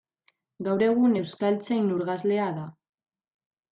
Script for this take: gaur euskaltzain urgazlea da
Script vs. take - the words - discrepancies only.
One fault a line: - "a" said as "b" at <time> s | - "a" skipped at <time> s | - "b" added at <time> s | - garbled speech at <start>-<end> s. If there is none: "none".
- "egun" added at 0.8 s